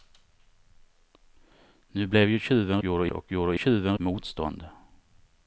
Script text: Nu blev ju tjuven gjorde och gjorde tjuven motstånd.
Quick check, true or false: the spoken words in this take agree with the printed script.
true